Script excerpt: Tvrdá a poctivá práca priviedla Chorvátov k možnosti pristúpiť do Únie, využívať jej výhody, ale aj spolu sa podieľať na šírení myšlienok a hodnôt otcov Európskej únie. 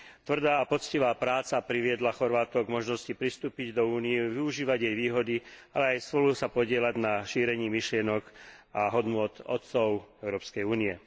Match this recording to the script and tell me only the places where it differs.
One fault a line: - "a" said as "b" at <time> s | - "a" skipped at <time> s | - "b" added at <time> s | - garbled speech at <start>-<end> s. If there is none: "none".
none